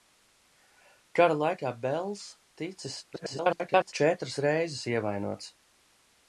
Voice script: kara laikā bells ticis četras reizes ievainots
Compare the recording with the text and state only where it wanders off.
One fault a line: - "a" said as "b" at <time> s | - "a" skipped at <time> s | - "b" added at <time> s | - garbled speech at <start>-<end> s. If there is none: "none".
- garbled speech at 3.1-3.9 s